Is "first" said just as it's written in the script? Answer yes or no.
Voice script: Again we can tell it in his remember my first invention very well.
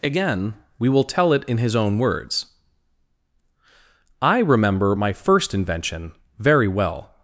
yes